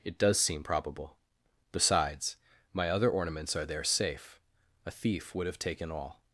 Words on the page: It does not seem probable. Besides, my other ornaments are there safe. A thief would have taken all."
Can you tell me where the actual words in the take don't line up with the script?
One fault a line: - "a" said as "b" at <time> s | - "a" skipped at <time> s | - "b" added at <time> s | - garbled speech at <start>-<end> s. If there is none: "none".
- "not" skipped at 0.4 s